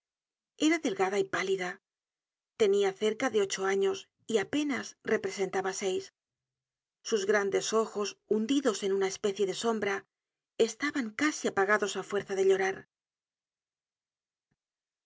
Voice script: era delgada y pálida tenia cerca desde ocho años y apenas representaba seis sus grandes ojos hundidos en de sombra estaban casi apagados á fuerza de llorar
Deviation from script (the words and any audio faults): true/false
true